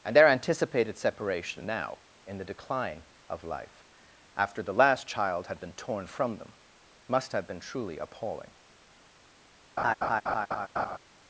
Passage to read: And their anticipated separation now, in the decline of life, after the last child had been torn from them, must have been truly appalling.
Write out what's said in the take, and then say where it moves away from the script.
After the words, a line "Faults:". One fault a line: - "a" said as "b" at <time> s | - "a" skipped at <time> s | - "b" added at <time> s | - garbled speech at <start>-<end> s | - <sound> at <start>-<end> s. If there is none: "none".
And their anticipated separation now, in the decline of life, after the last child had been torn from them, must have been truly appalling.
Faults:
- laugh at 9.8-11.0 s